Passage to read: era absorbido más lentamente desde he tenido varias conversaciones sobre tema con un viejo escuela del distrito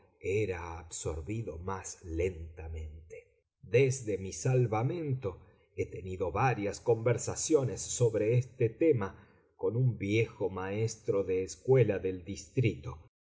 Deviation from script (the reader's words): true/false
true